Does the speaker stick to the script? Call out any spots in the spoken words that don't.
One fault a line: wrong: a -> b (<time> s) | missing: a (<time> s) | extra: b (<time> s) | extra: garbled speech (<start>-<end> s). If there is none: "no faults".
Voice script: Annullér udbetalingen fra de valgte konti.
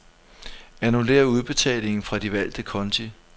no faults